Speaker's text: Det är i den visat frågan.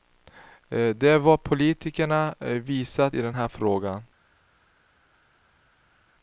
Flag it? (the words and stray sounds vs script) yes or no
yes